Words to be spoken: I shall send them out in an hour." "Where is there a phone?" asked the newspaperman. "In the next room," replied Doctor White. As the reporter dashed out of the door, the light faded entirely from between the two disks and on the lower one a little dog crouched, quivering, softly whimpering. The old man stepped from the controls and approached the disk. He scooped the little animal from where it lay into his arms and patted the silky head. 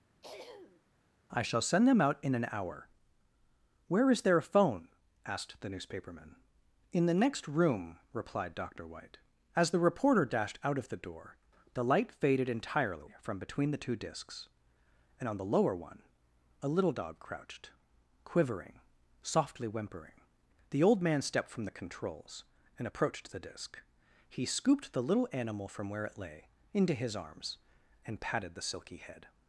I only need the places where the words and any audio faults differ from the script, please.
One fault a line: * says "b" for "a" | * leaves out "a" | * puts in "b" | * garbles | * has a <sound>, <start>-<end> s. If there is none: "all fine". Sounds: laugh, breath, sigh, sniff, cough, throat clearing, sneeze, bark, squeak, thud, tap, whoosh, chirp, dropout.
* has a throat clearing, 0.2-0.8 s